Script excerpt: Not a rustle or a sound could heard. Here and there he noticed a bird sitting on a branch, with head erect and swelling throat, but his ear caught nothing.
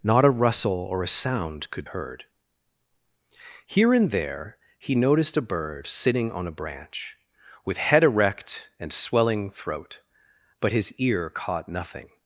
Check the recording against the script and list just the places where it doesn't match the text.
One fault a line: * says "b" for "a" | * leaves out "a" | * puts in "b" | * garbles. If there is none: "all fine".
all fine